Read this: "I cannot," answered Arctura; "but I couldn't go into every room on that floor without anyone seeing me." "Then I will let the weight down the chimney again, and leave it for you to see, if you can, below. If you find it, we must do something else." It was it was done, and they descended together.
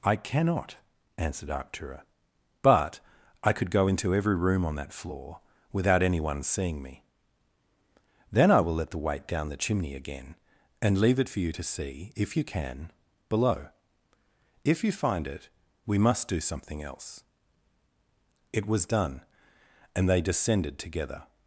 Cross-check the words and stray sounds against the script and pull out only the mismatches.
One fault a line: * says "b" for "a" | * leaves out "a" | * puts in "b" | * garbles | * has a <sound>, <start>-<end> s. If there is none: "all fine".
* says "could" for "couldn't"
* leaves out "it was"